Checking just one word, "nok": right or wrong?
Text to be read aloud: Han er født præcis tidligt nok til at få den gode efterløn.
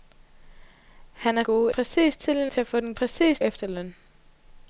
wrong